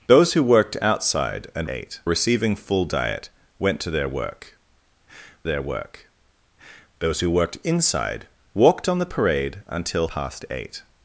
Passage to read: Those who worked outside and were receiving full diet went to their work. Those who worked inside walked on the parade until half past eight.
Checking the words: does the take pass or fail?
fail